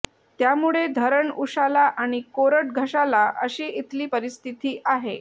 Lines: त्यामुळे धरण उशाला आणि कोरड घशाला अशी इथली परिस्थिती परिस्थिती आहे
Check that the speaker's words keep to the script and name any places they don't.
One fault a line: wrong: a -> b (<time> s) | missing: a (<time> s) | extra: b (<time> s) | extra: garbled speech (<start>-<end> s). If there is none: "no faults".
missing: परिस्थिती (4.8 s)